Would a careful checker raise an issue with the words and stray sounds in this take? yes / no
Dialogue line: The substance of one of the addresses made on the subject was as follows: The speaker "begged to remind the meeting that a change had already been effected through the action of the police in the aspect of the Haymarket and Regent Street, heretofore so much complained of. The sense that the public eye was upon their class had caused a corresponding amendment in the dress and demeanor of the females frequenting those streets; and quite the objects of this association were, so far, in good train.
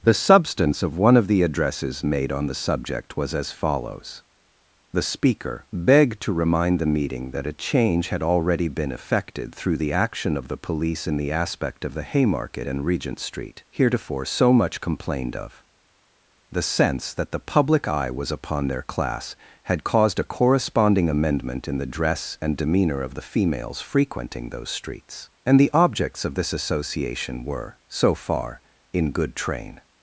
yes